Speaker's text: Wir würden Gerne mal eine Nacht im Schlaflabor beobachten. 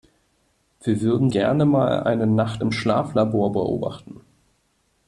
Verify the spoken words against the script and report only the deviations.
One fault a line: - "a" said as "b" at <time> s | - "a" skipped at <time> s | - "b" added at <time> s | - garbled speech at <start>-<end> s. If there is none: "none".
none